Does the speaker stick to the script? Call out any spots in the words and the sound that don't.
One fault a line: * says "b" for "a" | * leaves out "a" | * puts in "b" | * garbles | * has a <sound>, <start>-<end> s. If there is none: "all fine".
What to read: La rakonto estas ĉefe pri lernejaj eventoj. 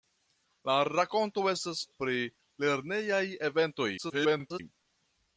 * leaves out "ĉefe"
* garbles